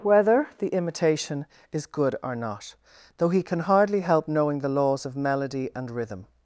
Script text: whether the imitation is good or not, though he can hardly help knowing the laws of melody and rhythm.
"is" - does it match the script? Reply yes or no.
yes